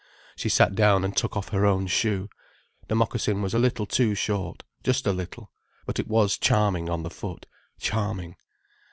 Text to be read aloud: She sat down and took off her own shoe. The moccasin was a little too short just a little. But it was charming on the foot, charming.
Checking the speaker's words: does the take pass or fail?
pass